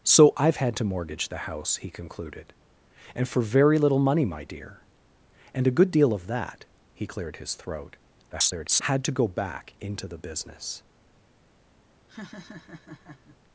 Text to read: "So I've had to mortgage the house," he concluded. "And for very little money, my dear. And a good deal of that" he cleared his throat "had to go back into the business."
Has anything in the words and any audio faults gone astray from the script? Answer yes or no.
yes